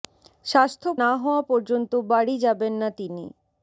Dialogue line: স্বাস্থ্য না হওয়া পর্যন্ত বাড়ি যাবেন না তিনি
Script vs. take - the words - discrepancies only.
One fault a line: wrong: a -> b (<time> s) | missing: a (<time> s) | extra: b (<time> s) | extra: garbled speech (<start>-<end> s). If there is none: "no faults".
no faults